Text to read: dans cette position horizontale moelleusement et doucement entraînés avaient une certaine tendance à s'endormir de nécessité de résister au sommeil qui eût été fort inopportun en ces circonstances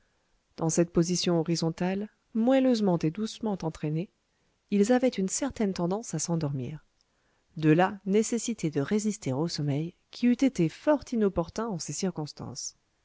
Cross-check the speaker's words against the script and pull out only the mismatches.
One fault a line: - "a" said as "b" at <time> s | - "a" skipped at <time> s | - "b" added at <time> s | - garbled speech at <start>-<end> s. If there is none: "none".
- "ils" added at 4.7 s
- "là" added at 7.7 s